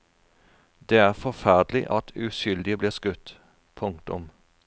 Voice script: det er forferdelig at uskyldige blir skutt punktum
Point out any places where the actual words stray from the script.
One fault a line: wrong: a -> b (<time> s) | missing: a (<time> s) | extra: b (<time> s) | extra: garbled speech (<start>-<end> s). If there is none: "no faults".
no faults